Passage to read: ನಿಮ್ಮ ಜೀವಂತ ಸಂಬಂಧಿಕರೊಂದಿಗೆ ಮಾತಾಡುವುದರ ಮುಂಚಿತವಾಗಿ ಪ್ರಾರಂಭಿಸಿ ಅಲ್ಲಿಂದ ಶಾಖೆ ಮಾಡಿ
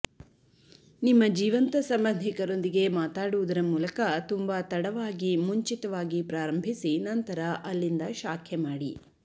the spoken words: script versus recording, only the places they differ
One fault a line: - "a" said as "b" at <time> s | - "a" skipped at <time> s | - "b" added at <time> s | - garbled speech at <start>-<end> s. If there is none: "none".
- "ಮೂಲಕ ತುಂಬಾ ತಡವಾಗಿ" added at 3.6 s
- "ನಂತರ" added at 7.1 s